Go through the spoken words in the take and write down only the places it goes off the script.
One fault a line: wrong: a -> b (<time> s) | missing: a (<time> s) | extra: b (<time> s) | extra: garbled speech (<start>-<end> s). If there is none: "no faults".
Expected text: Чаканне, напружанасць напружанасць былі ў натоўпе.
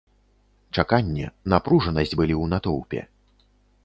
missing: напружанасць (2.2 s)